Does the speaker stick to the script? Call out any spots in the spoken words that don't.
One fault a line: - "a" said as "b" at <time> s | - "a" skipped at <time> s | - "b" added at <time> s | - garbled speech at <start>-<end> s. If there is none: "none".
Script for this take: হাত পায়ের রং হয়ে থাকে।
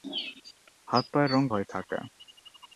none